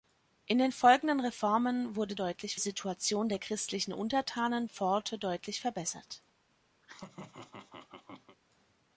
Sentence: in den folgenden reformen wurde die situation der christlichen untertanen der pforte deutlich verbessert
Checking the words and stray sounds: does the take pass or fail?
fail